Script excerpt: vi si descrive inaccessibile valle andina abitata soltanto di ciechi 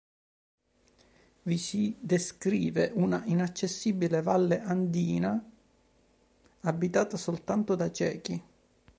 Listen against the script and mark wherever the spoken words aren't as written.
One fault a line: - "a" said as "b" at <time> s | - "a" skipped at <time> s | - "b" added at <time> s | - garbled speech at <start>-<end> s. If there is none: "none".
- "una" added at 3.0 s
- "di" said as "da" at 7.8 s